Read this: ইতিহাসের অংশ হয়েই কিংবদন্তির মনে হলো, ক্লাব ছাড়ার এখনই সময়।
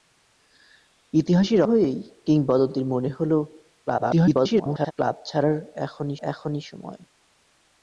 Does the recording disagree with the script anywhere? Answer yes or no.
yes